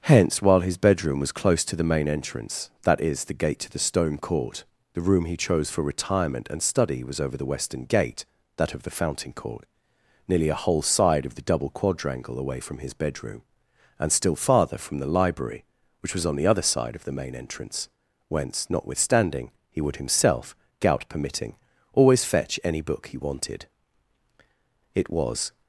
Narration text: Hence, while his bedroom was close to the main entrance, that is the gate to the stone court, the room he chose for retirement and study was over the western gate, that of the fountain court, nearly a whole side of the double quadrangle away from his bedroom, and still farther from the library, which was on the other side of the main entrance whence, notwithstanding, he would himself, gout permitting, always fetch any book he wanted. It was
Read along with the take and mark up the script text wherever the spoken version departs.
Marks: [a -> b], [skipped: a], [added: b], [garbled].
Hence, while his bedroom was close to the main entrance, that is the gate to the stone court, the room he chose for retirement and study was over the western gate, that of the fountain court, nearly a whole side of the double quadrangle away from his bedroom, and still farther from the library, which was on the other side of the main entrance whence, notwithstanding, he would himself, gout permitting, always fetch any book he wanted. It was